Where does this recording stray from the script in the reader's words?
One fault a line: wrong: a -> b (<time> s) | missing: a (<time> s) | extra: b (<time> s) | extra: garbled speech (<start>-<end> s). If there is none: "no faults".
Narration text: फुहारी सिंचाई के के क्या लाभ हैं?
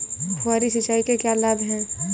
missing: के (1.2 s)